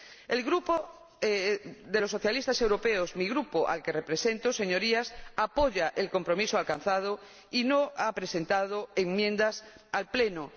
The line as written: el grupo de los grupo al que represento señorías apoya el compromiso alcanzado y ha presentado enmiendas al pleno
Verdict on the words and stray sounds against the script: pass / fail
fail